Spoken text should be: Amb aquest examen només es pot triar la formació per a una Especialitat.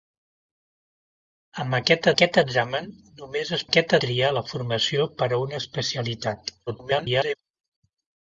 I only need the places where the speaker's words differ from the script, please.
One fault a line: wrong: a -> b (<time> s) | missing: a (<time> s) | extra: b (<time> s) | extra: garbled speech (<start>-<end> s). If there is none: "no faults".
extra: aquest (2.1 s)
wrong: pot -> aquest (3.7 s)
extra: garbled speech (6.7-7.4 s)